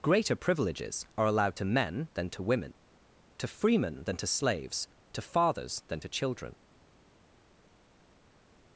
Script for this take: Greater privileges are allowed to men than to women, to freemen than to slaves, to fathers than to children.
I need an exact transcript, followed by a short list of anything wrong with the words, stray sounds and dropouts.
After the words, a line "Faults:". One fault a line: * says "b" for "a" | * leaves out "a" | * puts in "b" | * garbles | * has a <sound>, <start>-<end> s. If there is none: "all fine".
Greater privileges are allowed to men than to women, to freemen than to slaves, to fathers than to children.
Faults:
all fine